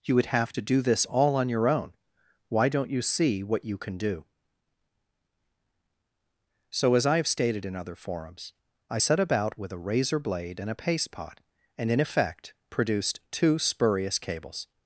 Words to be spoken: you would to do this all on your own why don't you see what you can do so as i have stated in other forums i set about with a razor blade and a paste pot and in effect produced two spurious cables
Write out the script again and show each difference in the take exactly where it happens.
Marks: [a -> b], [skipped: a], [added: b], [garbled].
you would [added: have] to do this all on your own why don't you see what you can do so as i have stated in other forums i set about with a razor blade and a paste pot and in effect produced two spurious cables